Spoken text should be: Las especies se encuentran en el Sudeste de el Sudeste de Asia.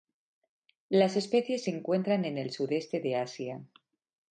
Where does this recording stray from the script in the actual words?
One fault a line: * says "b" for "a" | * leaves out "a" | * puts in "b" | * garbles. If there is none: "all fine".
* leaves out "el Sudeste de"